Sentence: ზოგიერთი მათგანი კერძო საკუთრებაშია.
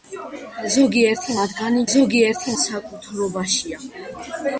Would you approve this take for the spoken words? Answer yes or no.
no